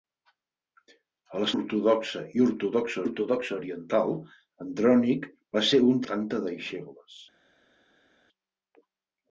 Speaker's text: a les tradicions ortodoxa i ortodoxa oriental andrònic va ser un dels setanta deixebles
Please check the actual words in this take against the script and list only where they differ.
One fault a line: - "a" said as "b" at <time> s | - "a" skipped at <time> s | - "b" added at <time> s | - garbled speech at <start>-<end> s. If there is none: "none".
- "tradicions" skipped at 1.5 s
- "ortodoxa" added at 3.0 s
- "dels" skipped at 6.1 s